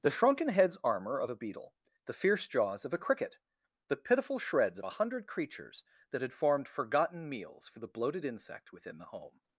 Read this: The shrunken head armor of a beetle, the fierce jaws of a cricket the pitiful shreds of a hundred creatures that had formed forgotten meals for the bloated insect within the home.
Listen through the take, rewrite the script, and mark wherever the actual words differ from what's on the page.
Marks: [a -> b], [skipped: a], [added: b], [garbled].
The shrunken [head -> heads] armor of a beetle, the fierce jaws of a cricket the pitiful shreds of a hundred creatures that had formed forgotten meals for the bloated insect within the home.